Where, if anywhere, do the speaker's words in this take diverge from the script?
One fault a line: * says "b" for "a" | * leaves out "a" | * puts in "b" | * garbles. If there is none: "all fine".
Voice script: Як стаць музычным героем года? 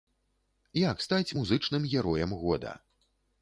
all fine